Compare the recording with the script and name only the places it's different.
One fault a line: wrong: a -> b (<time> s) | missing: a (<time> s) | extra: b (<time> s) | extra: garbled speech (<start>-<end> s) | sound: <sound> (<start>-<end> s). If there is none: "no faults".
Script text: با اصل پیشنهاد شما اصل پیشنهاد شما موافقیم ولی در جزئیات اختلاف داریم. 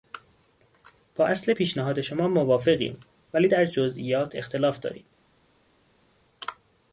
missing: اصل پیشنهاد شما (2.3 s)